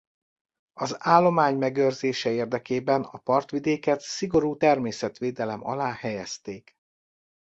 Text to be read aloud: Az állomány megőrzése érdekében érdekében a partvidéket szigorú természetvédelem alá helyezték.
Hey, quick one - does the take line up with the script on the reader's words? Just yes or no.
no